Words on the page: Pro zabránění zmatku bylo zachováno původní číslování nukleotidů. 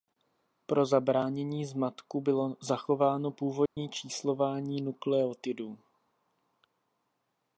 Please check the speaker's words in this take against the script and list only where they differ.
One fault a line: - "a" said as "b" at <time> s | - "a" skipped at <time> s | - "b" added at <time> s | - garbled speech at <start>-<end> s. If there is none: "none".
none